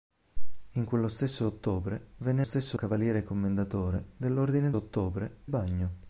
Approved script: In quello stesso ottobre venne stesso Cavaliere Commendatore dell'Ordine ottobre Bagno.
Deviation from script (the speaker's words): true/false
false